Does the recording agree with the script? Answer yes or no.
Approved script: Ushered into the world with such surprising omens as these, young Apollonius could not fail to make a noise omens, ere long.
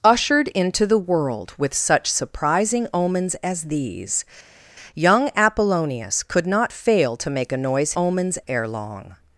yes